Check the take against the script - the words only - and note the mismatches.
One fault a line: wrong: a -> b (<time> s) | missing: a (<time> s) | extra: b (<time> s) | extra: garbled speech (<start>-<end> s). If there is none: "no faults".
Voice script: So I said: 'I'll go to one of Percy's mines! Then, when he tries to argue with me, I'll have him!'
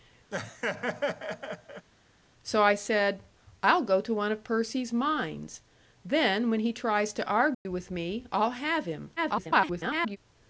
extra: garbled speech (9.2-10.2 s)